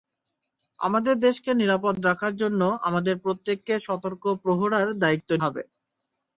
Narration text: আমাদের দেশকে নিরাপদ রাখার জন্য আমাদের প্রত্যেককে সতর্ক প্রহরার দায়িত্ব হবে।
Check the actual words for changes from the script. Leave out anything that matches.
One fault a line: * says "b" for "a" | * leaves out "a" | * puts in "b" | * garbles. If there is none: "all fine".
all fine